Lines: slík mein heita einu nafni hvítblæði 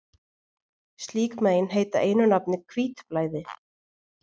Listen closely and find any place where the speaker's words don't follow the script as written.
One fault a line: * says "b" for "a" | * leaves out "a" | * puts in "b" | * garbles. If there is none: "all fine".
all fine